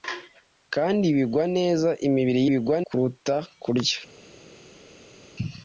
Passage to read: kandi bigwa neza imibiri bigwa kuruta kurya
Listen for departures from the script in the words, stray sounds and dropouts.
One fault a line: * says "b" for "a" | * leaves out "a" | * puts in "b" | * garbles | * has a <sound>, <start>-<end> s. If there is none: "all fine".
all fine